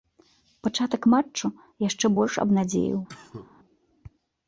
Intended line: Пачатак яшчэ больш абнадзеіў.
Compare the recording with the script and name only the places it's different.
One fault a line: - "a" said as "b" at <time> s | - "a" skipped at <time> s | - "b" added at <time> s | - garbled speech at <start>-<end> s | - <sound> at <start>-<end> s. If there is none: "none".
- "матчу" added at 1.1 s
- cough at 3.1-3.5 s